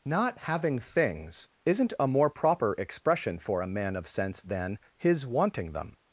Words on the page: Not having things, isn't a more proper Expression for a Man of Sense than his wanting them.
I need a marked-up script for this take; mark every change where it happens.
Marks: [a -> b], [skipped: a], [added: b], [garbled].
Not having things, isn't a more proper Expression for a Man of Sense than his wanting them.